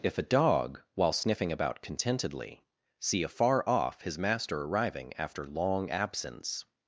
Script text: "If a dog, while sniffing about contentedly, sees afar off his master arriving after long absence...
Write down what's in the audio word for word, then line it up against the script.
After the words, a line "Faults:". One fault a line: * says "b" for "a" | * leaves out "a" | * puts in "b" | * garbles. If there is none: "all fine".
"If a dog, while sniffing about contentedly, see afar off his master arriving after long absence...
Faults:
* says "see" for "sees"